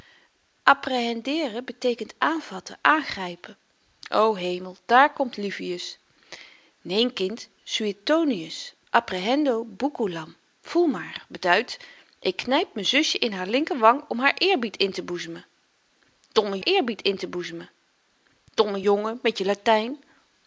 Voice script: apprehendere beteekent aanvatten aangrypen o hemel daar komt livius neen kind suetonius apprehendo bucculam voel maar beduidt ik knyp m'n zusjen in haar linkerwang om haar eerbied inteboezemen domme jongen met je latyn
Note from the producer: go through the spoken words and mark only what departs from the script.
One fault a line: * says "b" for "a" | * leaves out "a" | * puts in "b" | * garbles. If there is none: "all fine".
* puts in "eerbied inteboezemen domme"